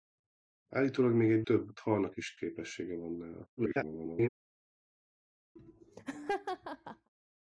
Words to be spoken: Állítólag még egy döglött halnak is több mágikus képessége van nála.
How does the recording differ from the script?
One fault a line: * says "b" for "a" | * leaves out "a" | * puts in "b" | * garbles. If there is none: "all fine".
* says "több" for "döglött"
* leaves out "több mágikus"
* garbles